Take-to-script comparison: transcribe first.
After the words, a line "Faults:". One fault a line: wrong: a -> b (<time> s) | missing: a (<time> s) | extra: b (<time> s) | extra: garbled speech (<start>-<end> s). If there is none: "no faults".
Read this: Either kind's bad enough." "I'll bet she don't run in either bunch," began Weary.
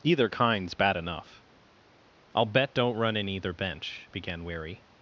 Either kind's bad enough." "I'll bet don't run in either bench," began Weary.
Faults:
missing: she (2.7 s)
wrong: bunch -> bench (3.5 s)